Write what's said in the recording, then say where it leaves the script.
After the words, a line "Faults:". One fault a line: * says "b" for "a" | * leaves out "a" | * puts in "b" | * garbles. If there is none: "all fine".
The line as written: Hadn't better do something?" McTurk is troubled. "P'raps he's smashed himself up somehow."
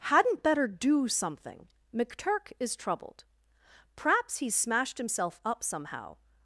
Hadn't better do something?" McTurk is troubled. "P'raps he's smashed himself up somehow."
Faults:
all fine